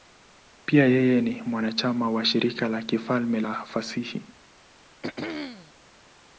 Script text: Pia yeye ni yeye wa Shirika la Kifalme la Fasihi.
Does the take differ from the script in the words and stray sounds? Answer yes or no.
yes